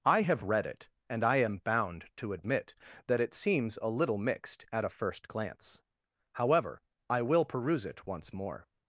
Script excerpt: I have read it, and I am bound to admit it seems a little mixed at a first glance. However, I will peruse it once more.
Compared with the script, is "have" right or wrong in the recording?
right